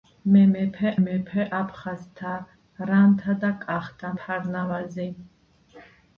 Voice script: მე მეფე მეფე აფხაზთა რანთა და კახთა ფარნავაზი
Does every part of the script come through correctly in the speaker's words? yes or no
yes